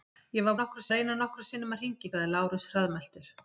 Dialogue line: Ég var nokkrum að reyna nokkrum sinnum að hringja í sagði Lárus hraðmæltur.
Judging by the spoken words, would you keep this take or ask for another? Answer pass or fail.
pass